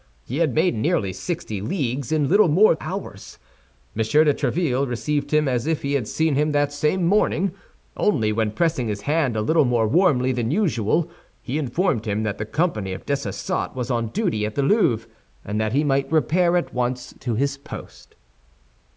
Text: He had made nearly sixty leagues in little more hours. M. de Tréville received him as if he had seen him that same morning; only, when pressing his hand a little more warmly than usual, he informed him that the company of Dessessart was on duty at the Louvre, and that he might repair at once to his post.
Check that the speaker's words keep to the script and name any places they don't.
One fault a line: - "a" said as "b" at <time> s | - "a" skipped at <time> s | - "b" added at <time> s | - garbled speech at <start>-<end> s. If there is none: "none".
none